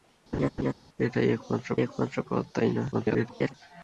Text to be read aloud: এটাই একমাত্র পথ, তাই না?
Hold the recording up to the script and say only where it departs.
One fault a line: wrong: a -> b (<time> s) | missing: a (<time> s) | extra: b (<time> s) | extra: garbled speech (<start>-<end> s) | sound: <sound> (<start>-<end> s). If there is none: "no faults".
sound: laugh (0.3-0.7 s)
extra: একমাত্র (1.8 s)
extra: garbled speech (2.9-3.5 s)